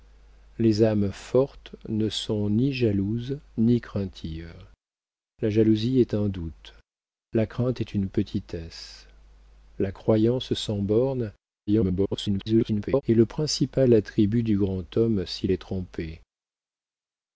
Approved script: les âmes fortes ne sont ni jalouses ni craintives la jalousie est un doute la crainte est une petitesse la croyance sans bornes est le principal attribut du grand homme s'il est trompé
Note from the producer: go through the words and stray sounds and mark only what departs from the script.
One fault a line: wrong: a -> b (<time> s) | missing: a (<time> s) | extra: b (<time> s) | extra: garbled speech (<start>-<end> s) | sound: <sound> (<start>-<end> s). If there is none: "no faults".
extra: garbled speech (11.7-13.0 s)